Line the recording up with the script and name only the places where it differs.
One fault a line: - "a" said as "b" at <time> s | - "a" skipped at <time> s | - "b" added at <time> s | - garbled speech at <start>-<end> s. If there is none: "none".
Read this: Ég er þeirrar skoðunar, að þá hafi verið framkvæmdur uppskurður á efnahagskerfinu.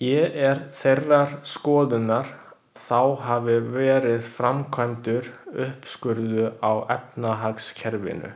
- "að" skipped at 2.2 s